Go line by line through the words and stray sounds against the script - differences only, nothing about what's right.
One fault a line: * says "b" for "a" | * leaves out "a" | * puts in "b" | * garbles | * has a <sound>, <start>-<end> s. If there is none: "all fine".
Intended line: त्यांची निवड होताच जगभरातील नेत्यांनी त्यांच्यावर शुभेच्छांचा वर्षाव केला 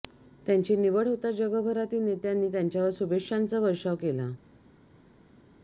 all fine